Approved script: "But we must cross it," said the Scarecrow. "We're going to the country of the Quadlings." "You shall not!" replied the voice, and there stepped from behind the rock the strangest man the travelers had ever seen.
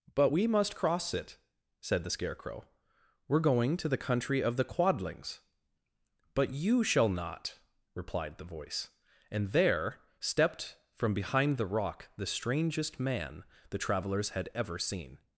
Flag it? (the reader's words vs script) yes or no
yes